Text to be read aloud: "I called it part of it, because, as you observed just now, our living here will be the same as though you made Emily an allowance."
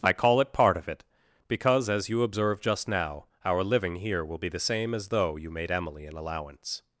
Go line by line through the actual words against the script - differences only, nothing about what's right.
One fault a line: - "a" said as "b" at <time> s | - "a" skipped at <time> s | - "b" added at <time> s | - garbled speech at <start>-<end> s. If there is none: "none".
- "called" said as "call" at 0.1 s